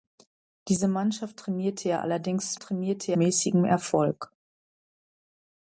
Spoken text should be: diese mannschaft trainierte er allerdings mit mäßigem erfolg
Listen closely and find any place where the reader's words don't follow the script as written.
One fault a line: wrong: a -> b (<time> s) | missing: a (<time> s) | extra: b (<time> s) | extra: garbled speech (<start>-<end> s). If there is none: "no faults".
wrong: mit -> trainierte (2.6 s)